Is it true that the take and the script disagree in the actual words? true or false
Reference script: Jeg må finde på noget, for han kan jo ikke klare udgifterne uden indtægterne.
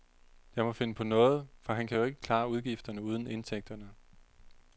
false